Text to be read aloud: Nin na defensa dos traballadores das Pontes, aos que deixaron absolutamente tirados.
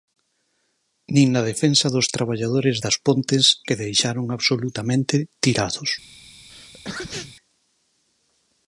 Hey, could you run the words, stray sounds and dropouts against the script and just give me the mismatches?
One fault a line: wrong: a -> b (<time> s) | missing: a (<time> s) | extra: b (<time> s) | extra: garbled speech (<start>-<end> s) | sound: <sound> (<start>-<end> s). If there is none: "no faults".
missing: aos (3.4 s)
sound: sneeze (6.5-7.4 s)